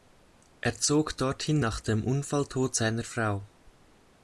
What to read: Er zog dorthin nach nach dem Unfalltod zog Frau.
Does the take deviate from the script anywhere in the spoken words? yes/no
yes